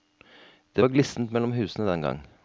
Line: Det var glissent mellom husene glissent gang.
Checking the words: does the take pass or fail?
fail